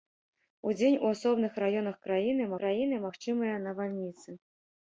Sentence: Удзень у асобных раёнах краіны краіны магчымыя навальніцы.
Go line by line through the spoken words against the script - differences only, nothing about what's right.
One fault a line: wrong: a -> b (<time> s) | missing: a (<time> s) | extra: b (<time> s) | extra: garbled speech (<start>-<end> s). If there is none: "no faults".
no faults